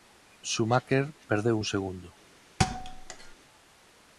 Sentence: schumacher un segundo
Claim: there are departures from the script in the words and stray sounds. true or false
true